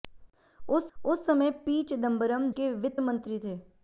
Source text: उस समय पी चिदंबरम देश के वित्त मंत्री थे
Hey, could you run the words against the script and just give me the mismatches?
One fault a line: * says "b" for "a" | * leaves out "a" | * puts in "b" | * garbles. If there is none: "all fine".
* puts in "उस"
* leaves out "देश"